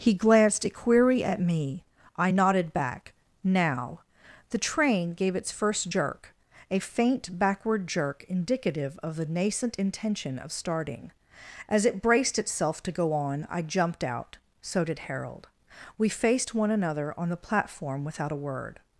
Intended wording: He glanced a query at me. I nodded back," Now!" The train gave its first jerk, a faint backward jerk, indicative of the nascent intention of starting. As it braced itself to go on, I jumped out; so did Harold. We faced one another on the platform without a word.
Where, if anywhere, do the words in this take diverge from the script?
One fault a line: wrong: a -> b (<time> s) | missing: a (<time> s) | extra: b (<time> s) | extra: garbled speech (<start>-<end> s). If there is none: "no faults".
no faults